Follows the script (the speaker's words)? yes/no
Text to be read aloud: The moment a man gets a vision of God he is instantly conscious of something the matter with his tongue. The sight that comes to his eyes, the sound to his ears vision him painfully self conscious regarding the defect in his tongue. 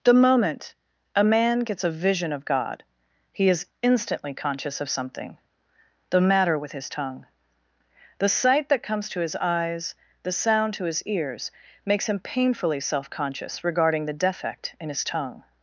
no